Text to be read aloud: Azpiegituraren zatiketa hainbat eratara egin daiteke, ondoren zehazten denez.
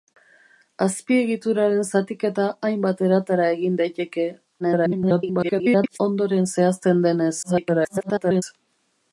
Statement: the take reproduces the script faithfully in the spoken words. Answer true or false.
false